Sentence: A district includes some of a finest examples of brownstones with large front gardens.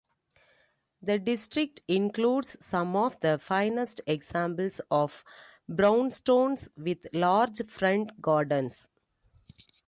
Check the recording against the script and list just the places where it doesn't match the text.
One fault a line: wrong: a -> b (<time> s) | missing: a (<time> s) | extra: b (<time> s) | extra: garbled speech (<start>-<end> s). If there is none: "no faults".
wrong: A -> The (1.0 s)
wrong: a -> the (3.2 s)